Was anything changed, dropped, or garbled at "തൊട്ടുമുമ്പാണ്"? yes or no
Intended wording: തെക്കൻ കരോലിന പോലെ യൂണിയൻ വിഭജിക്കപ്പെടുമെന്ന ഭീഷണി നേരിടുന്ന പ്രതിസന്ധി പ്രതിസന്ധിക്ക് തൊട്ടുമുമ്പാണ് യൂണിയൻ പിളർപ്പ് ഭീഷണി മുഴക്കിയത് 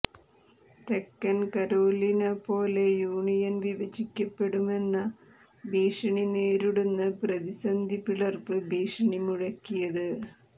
yes